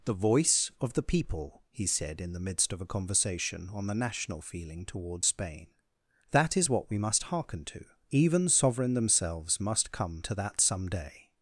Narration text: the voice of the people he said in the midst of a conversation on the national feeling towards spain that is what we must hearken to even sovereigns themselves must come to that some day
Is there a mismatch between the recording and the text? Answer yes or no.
yes